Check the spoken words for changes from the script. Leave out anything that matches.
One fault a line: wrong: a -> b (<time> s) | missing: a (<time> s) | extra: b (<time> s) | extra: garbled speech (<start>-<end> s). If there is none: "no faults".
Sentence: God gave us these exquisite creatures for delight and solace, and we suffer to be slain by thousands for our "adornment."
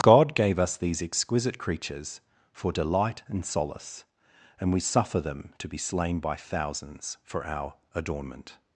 extra: them (5.2 s)